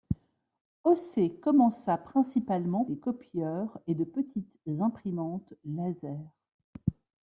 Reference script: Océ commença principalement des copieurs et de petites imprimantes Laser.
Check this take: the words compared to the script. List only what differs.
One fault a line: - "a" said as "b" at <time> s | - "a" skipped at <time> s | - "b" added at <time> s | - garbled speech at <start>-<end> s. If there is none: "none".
none